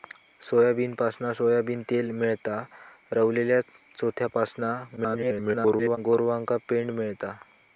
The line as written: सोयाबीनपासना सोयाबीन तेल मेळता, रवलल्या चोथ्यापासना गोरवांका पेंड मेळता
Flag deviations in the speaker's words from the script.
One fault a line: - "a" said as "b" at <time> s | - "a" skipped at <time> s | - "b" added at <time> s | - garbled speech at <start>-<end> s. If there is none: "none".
- garbled speech at 5.0-6.0 s